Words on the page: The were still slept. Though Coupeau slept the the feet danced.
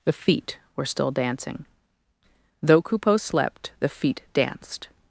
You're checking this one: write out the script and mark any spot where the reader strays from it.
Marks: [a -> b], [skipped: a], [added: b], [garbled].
The [added: feet] were still [slept. -> dancing] Though Coupeau slept the [skipped: the] feet danced.